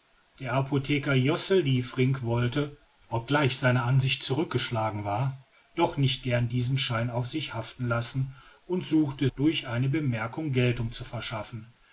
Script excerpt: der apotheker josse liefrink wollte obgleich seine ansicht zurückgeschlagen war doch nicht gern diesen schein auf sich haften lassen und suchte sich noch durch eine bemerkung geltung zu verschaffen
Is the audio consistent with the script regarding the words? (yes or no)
no